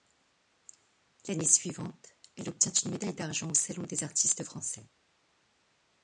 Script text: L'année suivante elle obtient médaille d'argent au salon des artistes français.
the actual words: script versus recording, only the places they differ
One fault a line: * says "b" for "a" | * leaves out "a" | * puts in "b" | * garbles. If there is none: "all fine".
* puts in "une"